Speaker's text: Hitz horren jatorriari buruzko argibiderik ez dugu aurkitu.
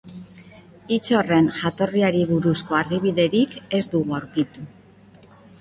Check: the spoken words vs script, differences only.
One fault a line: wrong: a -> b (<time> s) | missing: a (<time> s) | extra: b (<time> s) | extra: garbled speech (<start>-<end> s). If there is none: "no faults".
no faults